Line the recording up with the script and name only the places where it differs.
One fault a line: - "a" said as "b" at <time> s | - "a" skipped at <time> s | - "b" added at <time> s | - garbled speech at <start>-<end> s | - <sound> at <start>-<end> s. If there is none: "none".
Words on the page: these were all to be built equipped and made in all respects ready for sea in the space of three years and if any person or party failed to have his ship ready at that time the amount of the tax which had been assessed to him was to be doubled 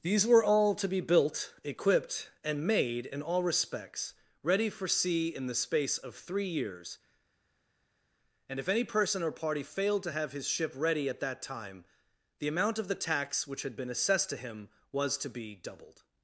none